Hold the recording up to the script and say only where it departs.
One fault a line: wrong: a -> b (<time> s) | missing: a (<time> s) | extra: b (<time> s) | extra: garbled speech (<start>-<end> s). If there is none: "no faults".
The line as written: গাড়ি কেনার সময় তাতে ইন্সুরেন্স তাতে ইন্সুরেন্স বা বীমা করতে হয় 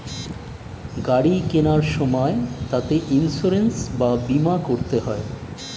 missing: তাতে ইন্সুরেন্স (3.7 s)